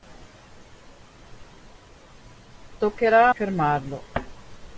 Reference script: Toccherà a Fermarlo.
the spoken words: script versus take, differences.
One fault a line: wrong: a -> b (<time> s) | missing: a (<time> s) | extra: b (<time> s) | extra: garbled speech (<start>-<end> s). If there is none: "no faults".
no faults